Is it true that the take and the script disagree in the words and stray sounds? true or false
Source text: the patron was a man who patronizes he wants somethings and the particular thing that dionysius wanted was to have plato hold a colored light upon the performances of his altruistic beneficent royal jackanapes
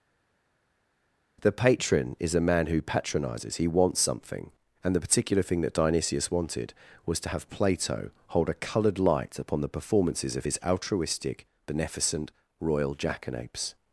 true